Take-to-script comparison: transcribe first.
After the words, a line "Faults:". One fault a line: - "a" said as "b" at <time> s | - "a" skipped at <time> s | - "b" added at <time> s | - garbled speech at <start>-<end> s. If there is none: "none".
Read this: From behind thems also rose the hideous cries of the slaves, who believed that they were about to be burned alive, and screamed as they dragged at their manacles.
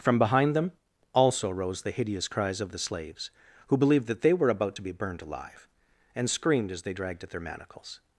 From behind them also rose the hideous cries of the slaves, who believed that they were about to be burned alive, and screamed as they dragged at their manacles.
Faults:
- "thems" said as "them" at 0.6 s